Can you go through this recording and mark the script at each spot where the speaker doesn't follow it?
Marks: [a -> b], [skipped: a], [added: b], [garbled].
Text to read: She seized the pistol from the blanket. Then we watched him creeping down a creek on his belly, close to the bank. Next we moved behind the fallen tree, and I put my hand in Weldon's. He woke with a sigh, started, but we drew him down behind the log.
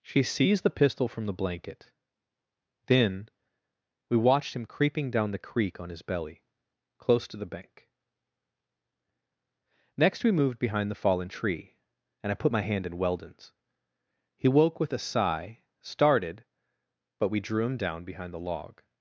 She seized the pistol from the blanket. Then we watched him creeping down [a -> the] creek on his belly, close to the bank. Next we moved behind the fallen tree, and I put my hand in Weldon's. He woke with a sigh, started, but we drew him down behind the log.